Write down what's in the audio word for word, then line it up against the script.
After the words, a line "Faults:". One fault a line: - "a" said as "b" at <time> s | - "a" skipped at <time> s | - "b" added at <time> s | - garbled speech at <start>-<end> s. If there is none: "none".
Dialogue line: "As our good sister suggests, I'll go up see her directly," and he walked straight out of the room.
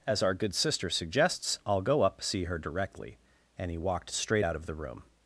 "As our good sister suggests, I'll go up see her directly," and he walked straight out of the room.
Faults:
none